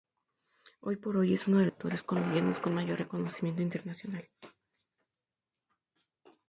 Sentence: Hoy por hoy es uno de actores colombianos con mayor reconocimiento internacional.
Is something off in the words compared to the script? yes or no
no